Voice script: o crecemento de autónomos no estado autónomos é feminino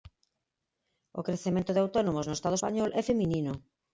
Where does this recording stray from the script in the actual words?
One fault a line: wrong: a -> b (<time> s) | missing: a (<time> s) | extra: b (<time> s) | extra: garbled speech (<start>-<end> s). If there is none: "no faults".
wrong: autónomos -> español (2.6 s)